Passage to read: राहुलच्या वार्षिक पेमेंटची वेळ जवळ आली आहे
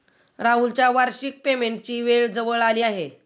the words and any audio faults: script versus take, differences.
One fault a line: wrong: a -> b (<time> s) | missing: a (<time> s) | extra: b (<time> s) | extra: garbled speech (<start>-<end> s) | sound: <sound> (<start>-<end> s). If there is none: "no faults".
no faults